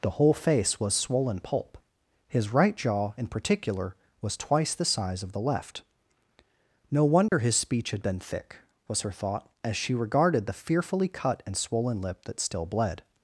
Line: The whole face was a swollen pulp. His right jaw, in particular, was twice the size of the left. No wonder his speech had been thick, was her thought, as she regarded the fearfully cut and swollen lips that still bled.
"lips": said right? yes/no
no